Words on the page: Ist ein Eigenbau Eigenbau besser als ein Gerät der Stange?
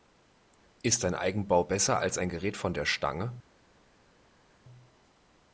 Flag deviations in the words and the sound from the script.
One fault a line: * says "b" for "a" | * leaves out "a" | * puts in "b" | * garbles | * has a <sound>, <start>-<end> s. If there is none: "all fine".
* leaves out "Eigenbau"
* puts in "von"